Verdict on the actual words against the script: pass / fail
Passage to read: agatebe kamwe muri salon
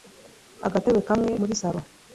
pass